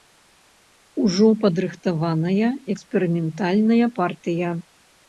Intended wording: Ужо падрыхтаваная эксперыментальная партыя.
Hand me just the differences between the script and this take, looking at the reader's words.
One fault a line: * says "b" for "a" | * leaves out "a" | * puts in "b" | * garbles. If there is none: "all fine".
all fine